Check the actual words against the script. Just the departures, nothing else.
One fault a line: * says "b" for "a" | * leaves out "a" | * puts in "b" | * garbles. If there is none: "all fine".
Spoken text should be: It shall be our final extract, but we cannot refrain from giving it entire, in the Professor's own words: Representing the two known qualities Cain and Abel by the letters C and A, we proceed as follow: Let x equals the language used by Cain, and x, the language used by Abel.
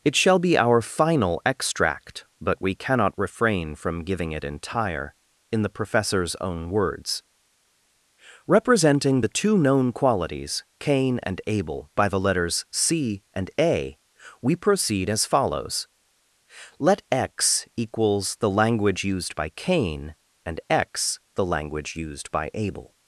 * says "follows" for "follow"